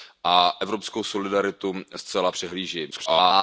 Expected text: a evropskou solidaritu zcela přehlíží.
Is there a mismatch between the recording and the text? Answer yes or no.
yes